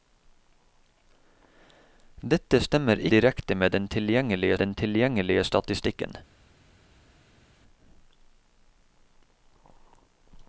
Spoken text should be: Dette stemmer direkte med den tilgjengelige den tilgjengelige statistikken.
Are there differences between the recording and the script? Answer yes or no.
no